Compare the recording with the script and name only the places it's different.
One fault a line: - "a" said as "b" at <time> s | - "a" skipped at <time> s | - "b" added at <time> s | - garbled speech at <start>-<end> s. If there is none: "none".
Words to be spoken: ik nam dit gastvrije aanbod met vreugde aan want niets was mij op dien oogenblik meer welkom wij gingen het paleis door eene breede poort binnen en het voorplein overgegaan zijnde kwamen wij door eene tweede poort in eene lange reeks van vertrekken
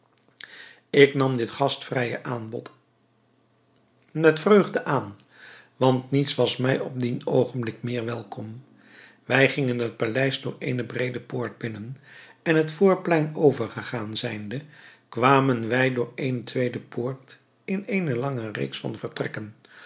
none